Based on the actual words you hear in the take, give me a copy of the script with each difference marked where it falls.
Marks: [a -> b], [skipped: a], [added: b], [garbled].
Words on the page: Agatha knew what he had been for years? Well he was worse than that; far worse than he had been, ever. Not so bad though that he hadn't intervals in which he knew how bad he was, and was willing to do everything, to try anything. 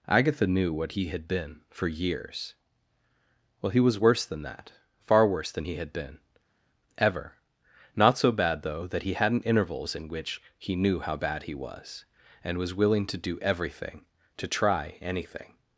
Agatha knew what he had been for years? Well he was worse than that; far worse than he had been, ever. Not so bad though that he hadn't intervals in which he knew how bad he was, and was willing to do everything, to try anything.